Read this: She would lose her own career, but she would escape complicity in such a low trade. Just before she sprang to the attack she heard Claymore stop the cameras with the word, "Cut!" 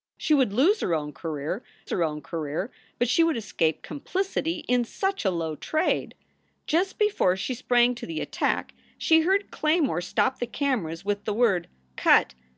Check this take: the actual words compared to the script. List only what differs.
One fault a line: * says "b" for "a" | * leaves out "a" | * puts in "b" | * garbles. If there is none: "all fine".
* puts in "her own career"